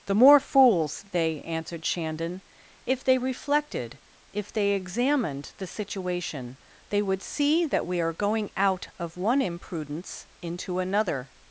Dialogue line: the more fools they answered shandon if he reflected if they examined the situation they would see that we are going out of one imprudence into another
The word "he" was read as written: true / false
false